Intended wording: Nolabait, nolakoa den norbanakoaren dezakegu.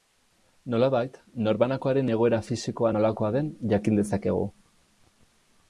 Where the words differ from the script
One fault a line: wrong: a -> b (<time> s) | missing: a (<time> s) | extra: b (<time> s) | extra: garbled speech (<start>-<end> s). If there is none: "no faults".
extra: norbanakoaren egoera fisikoa (1.5 s)
wrong: norbanakoaren -> jakin (3.7 s)